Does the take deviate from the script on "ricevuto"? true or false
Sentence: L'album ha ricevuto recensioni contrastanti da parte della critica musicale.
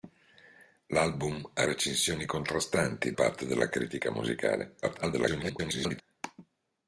true